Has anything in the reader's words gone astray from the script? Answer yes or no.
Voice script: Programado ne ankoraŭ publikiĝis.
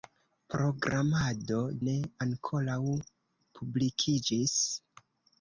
no